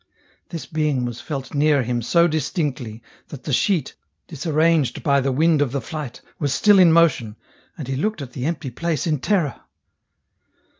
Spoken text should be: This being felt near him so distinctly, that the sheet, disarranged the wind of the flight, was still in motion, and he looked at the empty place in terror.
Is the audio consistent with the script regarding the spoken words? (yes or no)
no